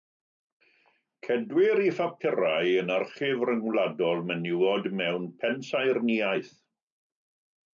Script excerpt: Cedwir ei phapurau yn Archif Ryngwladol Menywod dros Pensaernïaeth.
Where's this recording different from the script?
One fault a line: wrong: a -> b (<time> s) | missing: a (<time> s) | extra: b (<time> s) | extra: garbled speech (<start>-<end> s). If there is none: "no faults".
wrong: dros -> mewn (5.0 s)